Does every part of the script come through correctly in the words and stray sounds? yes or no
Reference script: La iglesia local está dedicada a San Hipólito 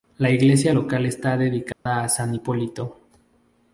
no